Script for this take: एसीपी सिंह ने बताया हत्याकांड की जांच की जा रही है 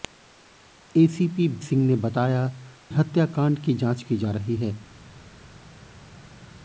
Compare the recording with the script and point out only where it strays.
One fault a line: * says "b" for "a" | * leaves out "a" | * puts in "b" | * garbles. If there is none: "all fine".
all fine